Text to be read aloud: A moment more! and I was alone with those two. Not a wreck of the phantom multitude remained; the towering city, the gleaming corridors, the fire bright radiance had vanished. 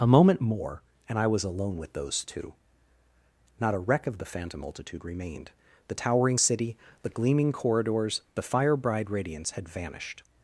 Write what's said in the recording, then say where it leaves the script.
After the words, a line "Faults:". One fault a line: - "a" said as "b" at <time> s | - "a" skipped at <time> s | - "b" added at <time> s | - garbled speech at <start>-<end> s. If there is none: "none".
A moment more! and I was alone with those two. Not a wreck of the phantom multitude remained; the towering city, the gleaming corridors, the fire bride radiance had vanished.
Faults:
- "bright" said as "bride" at 8.7 s